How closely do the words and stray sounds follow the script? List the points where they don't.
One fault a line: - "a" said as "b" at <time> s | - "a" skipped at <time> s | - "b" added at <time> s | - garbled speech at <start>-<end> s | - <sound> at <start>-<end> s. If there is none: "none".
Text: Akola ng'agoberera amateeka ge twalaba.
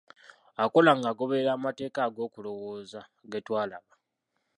- "ag'okulowooza" added at 2.1 s